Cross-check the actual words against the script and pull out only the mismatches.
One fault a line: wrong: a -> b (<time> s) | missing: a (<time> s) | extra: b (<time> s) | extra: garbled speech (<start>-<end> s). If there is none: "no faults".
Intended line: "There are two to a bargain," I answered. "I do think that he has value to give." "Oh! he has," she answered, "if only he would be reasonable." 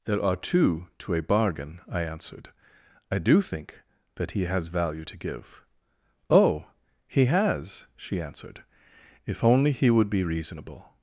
no faults